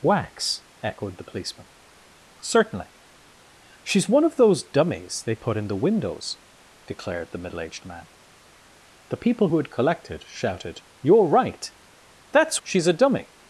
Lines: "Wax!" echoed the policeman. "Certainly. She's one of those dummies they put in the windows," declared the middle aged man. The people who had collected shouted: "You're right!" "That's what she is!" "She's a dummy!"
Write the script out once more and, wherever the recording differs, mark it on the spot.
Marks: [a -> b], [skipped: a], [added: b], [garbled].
"Wax!" echoed the policeman. "Certainly. She's one of those dummies they put in the windows," declared the middle aged man. The people who had collected shouted: "You're right!" "That's [skipped: what she is!"] "She's a dummy!"